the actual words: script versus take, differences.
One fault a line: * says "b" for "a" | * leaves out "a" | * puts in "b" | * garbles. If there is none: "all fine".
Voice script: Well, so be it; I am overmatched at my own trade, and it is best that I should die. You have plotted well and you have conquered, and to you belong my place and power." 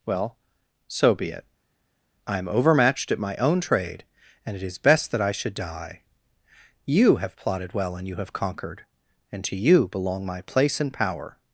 all fine